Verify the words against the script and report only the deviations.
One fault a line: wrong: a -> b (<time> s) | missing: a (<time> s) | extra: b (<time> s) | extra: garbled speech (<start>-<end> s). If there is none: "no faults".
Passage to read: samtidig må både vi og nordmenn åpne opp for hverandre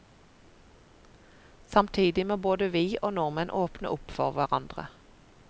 no faults